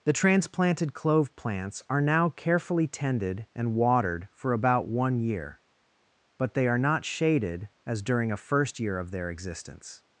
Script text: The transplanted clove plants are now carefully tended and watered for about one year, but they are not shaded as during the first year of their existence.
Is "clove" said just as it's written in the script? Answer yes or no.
yes